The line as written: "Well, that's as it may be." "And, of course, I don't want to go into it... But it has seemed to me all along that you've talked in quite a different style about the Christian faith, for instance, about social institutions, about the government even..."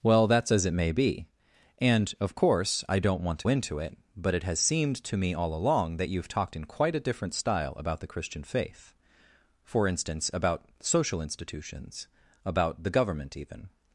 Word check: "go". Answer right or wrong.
wrong